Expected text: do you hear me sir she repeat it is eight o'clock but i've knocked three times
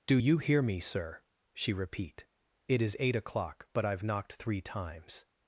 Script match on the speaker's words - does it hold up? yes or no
yes